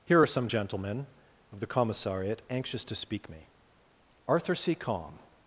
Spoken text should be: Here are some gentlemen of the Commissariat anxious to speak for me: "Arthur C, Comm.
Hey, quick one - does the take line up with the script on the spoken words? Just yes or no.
no